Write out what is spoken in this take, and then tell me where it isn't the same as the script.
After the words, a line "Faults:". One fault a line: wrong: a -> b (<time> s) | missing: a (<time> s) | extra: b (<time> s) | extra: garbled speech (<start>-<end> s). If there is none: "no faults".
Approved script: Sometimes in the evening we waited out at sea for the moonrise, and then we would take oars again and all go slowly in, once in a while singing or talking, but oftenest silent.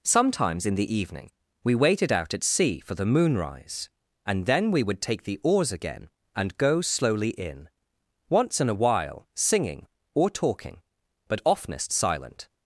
Sometimes in the evening we waited out at sea for the moonrise, and then we would take the oars again and go slowly in, once in a while singing or talking, but oftenest silent.
Faults:
extra: the (5.2 s)
missing: all (6.6 s)